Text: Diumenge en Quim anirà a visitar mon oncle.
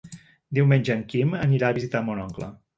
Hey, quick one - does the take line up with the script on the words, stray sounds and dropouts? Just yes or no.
yes